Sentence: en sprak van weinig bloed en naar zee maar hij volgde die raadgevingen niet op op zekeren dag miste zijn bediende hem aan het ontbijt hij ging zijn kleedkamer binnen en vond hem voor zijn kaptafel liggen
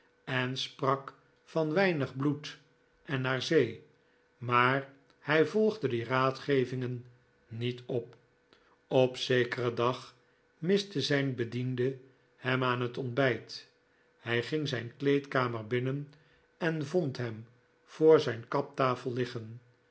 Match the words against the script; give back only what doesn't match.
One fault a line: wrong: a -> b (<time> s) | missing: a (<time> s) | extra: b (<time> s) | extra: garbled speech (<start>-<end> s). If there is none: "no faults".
no faults